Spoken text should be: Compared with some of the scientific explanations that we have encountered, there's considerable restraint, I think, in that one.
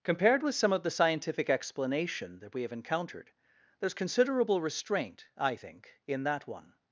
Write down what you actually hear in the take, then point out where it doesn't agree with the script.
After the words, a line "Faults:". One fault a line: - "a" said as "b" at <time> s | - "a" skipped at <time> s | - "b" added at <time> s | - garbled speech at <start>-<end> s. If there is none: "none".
Compared with some of the scientific explanation that we have encountered, there's considerable restraint, I think, in that one.
Faults:
- "explanations" said as "explanation" at 1.5 s